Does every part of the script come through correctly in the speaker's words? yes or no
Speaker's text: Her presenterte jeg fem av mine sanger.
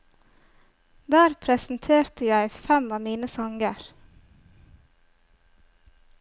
no